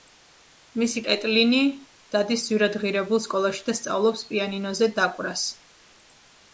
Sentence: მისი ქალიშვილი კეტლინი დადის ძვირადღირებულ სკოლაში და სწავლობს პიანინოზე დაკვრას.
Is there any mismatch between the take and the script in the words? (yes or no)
yes